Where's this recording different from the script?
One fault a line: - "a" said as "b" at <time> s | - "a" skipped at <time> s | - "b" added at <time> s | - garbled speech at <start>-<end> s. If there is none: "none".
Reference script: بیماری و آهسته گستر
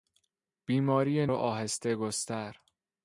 none